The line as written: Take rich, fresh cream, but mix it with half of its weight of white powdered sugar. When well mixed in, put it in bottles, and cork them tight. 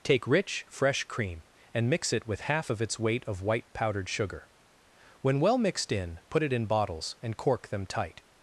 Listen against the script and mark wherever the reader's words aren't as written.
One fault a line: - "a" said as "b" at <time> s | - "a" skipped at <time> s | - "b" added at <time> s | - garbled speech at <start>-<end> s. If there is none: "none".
- "but" said as "and" at 1.8 s